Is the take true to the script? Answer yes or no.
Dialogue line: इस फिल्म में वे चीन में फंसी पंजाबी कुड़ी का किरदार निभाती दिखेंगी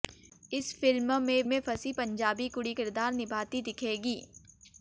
no